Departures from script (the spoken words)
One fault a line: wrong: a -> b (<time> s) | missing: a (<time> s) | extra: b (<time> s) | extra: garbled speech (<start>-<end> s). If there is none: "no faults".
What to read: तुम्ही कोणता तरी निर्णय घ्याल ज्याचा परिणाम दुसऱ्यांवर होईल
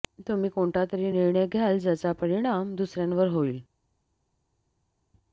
no faults